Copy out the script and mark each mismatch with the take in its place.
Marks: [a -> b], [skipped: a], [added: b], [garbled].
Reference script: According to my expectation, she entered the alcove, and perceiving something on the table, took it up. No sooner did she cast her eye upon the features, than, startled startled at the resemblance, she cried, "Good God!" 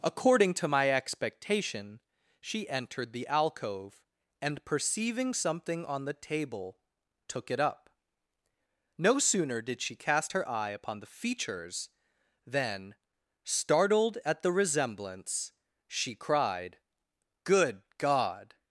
According to my expectation, she entered the alcove, and perceiving something on the table, took it up. No sooner did she cast her eye upon the features, than, startled [skipped: startled] at the resemblance, she cried, "Good God!"